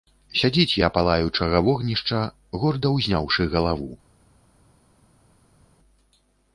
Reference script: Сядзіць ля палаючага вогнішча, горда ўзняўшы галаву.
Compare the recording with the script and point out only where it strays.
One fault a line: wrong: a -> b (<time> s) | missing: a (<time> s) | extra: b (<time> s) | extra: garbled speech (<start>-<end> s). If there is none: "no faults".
no faults